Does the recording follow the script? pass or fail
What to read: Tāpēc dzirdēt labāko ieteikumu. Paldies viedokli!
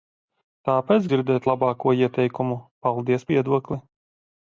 pass